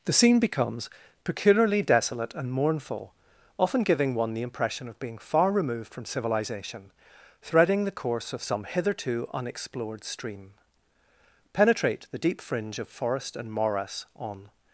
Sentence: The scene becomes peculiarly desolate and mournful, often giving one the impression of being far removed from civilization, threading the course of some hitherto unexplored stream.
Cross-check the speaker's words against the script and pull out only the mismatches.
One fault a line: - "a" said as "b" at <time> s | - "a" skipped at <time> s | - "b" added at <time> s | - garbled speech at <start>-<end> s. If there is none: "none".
- "Penetrate the deep fringe of forest and morass on" added at 11.5 s